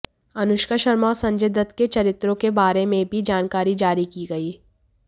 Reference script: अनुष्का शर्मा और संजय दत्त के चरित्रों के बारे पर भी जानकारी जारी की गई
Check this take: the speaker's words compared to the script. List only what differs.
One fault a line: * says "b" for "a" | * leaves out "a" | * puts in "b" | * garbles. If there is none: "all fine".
* says "में" for "पर"